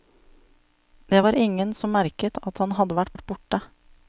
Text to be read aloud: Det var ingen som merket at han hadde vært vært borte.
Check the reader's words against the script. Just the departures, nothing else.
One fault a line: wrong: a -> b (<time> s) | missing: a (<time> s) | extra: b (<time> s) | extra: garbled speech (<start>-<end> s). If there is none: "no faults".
no faults